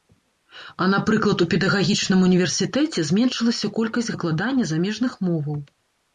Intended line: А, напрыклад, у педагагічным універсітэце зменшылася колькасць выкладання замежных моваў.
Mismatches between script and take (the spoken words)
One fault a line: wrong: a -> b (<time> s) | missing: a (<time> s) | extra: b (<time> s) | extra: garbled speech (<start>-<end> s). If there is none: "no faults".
no faults